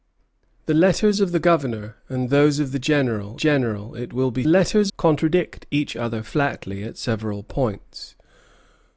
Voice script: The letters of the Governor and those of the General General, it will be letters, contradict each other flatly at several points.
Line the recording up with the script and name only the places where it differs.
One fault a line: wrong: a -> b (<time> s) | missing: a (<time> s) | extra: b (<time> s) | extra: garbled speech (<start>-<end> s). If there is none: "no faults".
no faults